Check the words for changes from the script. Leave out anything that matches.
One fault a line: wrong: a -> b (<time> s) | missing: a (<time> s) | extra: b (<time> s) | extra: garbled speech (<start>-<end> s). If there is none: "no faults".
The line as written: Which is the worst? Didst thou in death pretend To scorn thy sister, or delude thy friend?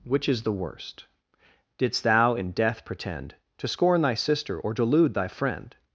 no faults